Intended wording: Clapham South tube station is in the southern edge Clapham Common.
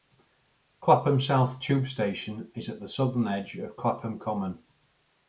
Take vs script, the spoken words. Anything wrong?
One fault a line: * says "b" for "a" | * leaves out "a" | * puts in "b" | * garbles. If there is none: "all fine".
* says "at" for "in"
* puts in "of"